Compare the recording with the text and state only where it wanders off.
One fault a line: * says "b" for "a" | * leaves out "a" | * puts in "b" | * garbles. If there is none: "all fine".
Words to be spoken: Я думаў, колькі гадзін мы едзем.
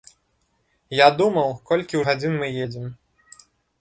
all fine